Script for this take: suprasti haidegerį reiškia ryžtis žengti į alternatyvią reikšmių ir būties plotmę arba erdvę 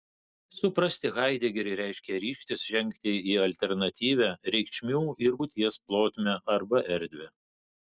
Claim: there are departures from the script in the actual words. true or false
false